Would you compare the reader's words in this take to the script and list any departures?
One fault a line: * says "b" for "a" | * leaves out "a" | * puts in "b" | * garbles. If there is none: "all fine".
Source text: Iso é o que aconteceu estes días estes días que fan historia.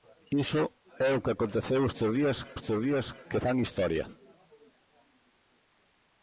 all fine